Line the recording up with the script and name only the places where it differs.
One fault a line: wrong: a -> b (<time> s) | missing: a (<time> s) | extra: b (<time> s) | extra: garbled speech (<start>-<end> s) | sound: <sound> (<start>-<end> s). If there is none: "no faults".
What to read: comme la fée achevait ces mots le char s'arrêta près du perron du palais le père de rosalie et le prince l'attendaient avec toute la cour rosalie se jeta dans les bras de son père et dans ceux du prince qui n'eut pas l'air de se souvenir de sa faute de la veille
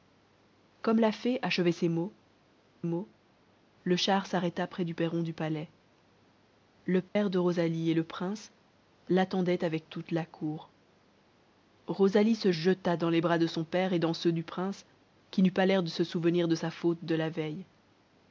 extra: mots (2.8 s)
sound: dropout (7.1-7.2 s)